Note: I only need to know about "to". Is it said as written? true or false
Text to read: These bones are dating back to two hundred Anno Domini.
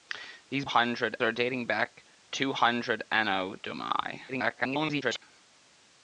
false